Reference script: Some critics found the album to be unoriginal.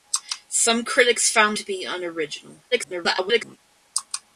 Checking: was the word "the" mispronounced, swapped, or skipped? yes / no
yes